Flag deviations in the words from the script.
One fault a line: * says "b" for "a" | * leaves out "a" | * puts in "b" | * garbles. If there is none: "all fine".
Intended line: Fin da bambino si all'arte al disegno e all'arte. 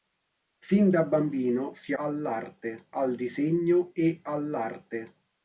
all fine